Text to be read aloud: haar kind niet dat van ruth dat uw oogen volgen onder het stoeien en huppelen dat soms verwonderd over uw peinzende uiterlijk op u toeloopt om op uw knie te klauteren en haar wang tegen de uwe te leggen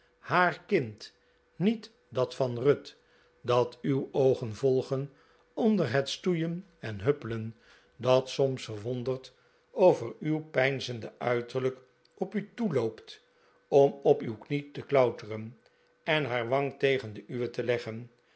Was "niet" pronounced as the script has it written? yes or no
yes